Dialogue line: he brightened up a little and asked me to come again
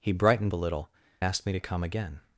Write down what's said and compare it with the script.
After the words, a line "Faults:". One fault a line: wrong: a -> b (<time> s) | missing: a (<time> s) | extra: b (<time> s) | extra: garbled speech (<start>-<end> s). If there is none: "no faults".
he brightened a little asked me to come again
Faults:
missing: up (0.5 s)
missing: and (0.9 s)